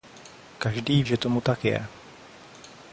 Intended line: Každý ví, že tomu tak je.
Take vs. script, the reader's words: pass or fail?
fail